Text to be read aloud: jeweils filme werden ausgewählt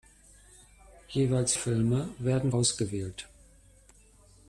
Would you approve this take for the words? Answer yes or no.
yes